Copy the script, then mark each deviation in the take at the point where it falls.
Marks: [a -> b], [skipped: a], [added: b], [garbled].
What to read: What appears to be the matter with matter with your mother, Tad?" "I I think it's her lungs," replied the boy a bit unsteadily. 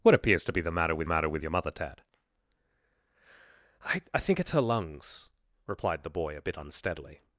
What appears to be the matter with matter with your mother, Tad?" "I I think it's her lungs," replied the boy a bit unsteadily.